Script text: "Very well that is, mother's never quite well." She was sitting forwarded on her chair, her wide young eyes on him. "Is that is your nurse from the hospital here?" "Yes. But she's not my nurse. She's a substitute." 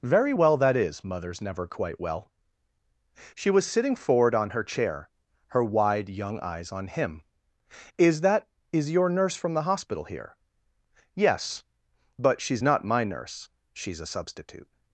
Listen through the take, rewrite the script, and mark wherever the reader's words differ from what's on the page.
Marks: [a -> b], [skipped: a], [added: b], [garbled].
"Very well that is, mother's never quite well." She was sitting [forwarded -> forward] on her chair, her wide young eyes on him. "Is that is your nurse from the hospital here?" "Yes. But she's not my nurse. She's a substitute."